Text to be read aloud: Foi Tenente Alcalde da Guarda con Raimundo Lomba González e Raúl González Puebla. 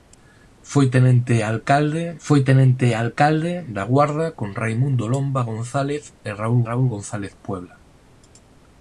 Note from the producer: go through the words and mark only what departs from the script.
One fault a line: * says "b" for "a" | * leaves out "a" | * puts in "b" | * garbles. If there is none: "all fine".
* puts in "foi Tenente Alcalde"
* puts in "Raúl"